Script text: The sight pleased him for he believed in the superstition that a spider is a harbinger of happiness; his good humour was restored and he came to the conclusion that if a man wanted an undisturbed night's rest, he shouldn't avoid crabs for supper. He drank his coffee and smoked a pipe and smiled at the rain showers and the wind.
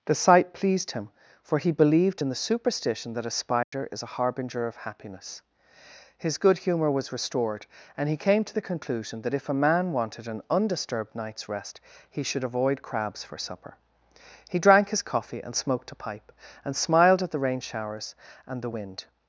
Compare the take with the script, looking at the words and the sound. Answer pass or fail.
fail